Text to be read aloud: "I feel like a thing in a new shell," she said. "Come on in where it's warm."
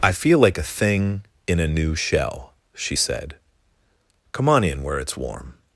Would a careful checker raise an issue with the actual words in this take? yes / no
no